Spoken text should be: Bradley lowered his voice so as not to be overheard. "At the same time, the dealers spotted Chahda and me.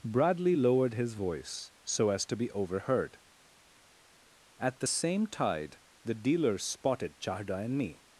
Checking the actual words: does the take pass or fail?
fail